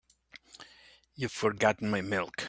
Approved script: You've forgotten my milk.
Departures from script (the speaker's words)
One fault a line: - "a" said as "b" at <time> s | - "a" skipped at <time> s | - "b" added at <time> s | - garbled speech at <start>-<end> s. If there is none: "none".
none